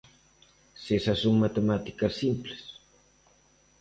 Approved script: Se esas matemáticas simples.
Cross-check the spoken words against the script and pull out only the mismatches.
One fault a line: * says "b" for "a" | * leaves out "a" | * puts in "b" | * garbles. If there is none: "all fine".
* puts in "son"